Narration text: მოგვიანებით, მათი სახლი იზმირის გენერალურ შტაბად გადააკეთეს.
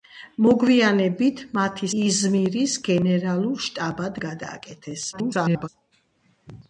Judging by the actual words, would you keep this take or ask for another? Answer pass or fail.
fail